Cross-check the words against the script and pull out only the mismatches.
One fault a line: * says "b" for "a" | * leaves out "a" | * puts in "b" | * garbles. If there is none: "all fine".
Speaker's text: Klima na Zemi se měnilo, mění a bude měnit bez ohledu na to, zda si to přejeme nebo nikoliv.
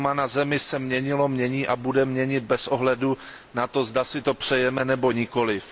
all fine